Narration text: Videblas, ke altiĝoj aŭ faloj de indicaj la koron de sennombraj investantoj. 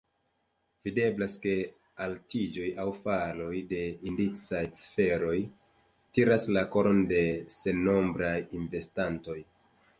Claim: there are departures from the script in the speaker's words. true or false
true